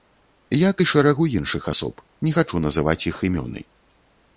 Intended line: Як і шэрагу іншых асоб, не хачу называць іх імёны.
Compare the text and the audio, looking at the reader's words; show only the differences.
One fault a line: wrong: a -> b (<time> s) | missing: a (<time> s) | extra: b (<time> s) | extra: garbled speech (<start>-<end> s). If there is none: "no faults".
no faults